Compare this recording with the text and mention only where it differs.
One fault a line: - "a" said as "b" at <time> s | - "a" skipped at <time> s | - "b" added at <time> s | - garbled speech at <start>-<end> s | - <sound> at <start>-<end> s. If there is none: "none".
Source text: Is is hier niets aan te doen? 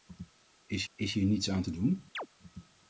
- chirp at 2.1-2.3 s